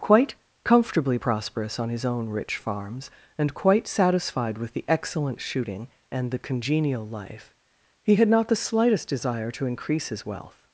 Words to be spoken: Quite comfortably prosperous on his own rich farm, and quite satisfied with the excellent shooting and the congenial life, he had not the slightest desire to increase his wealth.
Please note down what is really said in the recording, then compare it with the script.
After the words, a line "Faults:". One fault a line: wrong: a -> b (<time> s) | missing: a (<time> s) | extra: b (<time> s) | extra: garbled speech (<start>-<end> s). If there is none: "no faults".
Quite comfortably prosperous on his own rich farms, and quite satisfied with the excellent shooting and the congenial life, he had not the slightest desire to increase his wealth.
Faults:
wrong: farm -> farms (2.6 s)